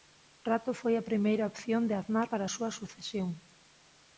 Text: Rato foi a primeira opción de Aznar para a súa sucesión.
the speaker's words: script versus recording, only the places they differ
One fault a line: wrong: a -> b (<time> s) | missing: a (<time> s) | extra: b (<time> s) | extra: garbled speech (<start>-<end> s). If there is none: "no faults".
no faults